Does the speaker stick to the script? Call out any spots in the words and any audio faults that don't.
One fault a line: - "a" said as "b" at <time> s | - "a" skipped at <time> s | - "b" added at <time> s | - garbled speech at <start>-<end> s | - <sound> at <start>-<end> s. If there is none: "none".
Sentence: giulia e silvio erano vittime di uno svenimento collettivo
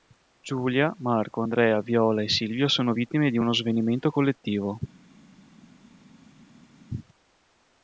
- "marco andrea viola" added at 1.0 s
- "erano" said as "sono" at 2.7 s